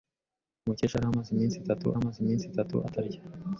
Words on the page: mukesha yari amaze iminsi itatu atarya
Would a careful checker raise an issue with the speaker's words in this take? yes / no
yes